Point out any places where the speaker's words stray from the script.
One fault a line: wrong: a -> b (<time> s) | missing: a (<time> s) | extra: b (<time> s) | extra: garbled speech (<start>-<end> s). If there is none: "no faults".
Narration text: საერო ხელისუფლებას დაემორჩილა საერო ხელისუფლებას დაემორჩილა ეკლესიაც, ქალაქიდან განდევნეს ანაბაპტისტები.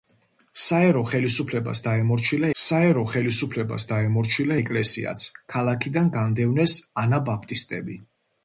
no faults